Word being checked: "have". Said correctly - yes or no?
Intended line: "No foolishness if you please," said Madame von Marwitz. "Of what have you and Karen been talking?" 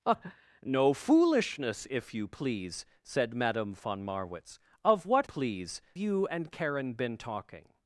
no